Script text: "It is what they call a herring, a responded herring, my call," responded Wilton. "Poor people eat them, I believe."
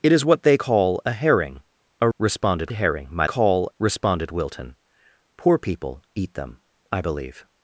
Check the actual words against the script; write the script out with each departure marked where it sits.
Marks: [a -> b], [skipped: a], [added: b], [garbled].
"It is what they call a herring, a responded herring, my call," responded Wilton. "Poor people eat them, I believe."